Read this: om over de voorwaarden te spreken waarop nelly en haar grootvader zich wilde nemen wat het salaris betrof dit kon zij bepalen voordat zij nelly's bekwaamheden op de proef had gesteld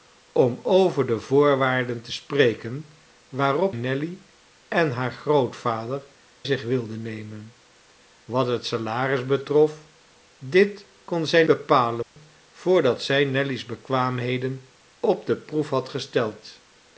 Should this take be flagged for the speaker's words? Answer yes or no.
no